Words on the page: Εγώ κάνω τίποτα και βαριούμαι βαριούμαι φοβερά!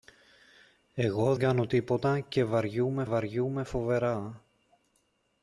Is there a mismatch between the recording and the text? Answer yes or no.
no